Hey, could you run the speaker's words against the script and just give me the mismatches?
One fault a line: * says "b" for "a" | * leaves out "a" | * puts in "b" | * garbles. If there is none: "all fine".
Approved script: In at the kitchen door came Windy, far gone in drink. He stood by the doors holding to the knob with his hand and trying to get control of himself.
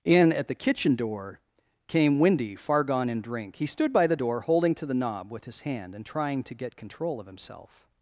* says "door" for "doors"